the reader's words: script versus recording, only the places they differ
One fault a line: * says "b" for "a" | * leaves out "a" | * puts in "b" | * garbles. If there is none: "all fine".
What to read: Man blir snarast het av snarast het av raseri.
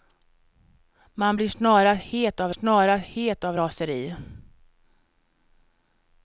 all fine